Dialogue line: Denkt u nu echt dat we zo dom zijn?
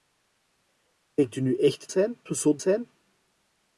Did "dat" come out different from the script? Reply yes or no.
yes